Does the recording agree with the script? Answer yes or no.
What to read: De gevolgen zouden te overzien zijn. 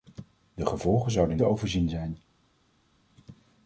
yes